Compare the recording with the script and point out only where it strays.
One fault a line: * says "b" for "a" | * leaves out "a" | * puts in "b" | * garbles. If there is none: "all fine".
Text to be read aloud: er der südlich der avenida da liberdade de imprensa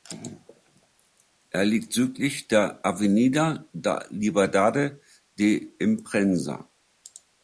* says "liegt" for "der"